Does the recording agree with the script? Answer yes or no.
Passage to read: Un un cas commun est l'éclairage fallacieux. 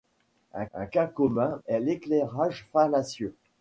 yes